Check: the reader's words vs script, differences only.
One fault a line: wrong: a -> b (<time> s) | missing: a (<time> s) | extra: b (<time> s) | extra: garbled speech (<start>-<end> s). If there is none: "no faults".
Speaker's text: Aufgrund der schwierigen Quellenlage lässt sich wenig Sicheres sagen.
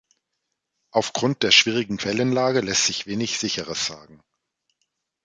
no faults